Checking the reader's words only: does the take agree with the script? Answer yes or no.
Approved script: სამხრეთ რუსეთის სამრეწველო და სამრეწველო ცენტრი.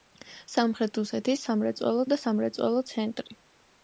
yes